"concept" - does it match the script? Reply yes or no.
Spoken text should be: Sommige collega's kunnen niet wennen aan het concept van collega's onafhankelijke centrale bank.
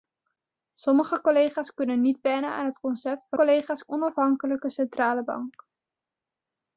yes